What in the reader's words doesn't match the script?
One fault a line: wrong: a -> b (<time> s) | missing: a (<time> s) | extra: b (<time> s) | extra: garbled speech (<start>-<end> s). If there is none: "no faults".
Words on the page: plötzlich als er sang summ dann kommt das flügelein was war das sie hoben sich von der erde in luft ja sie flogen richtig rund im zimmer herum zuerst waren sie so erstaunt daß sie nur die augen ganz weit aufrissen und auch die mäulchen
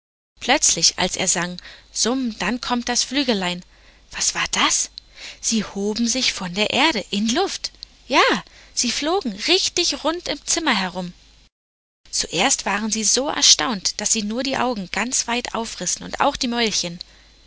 no faults